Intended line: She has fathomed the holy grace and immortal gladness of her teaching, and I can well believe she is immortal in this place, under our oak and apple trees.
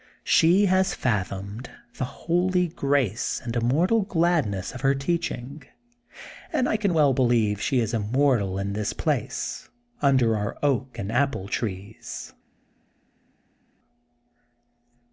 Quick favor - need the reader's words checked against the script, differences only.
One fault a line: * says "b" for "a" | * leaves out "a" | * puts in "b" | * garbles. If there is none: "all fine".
all fine